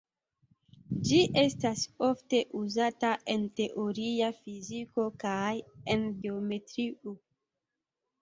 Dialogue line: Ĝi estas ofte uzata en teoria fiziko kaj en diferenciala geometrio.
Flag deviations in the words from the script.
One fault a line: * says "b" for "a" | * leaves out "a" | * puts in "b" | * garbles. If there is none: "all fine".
* leaves out "diferenciala"